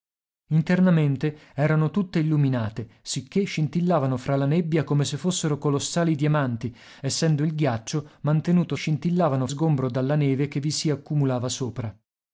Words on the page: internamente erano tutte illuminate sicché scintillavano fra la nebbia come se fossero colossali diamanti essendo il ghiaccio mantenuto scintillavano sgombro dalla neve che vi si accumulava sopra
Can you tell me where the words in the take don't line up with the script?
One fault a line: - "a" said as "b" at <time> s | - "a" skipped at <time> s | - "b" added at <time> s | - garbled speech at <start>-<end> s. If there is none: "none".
none